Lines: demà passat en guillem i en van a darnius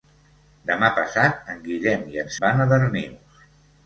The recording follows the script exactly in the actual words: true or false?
true